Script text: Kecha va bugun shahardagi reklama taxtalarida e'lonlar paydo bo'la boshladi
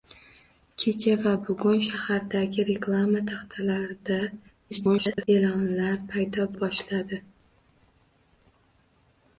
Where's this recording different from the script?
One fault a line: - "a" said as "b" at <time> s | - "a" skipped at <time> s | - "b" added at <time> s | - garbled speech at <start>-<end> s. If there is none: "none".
- garbled speech at 4.7-5.3 s
- "bo'la" skipped at 6.5 s